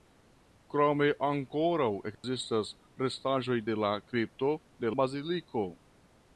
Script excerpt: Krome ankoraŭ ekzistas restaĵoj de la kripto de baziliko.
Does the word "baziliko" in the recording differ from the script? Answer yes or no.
no